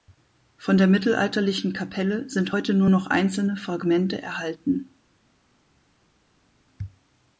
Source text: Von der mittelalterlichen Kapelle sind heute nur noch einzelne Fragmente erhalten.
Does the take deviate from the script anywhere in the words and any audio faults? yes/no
no